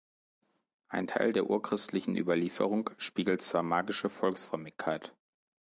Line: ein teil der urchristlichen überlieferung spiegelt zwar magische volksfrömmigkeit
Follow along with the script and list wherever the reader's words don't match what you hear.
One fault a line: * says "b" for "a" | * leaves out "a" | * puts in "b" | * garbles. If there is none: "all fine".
all fine